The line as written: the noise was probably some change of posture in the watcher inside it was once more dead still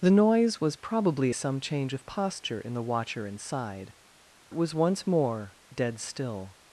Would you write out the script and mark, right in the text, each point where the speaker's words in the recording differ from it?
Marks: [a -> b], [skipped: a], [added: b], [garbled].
the noise was probably some change of posture in the watcher inside it was once more dead still